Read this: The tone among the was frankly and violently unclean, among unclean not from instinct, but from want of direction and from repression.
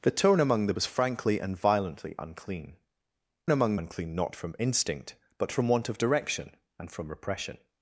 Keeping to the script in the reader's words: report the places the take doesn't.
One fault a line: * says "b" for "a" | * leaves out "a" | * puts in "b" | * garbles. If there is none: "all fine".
all fine